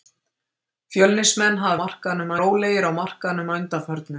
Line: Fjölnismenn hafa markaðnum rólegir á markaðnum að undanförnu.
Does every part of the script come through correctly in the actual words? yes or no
yes